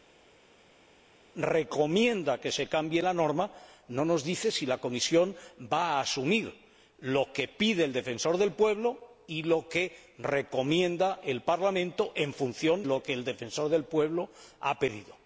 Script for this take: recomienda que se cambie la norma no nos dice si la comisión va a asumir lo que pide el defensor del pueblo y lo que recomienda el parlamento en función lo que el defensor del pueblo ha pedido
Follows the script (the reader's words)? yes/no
yes